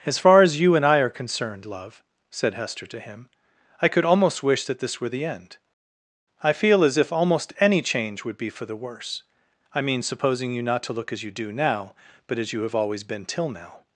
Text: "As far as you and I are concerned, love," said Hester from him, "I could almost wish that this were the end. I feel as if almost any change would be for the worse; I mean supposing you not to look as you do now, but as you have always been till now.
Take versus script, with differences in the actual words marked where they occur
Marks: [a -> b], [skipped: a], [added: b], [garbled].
"As far as you and I are concerned, love," said Hester [from -> to] him, "I could almost wish that this were the end. I feel as if almost any change would be for the worse; I mean supposing you not to look as you do now, but as you have always been till now.